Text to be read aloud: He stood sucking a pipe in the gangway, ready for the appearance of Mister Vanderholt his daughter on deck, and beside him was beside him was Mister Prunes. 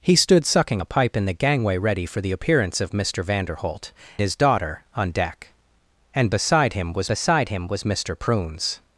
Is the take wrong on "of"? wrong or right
right